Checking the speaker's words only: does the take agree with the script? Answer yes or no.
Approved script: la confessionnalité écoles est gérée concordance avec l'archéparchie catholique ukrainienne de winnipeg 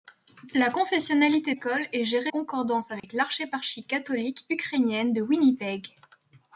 yes